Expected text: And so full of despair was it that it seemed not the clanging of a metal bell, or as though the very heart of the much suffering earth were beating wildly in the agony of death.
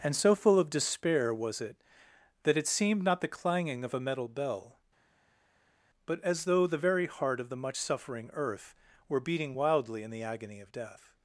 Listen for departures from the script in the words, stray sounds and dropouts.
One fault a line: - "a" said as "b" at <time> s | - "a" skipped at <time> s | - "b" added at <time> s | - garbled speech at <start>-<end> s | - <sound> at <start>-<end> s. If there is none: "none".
- "or" said as "but" at 6.1 s